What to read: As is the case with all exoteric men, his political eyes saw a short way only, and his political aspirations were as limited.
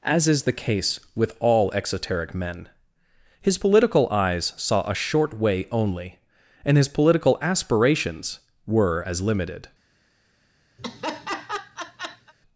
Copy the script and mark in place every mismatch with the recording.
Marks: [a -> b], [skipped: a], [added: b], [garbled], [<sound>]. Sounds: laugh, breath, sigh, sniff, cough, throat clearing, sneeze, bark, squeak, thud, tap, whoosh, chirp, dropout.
As is the case with all exoteric men, his political eyes saw a short way only, and his political aspirations were as limited. [laugh]